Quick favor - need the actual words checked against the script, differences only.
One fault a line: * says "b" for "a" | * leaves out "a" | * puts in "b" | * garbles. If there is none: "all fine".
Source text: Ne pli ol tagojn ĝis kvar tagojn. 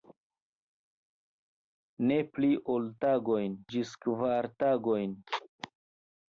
all fine